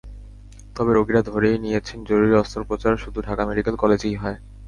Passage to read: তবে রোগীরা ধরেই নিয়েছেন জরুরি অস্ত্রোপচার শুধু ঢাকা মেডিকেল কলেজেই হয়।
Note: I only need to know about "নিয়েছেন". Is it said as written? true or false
true